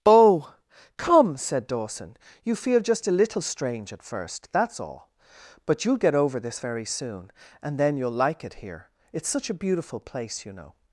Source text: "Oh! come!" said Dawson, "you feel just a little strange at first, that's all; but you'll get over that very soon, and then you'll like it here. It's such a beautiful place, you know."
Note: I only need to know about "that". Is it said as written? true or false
false